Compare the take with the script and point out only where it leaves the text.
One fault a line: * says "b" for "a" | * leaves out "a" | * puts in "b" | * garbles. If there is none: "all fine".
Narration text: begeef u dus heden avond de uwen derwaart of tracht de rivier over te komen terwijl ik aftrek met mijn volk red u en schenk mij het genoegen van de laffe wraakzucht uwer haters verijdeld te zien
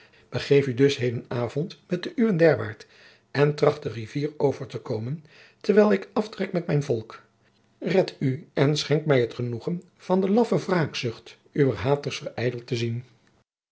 * puts in "met"
* says "en" for "of"